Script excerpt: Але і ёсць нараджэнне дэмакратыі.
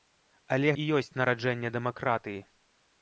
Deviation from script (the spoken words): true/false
false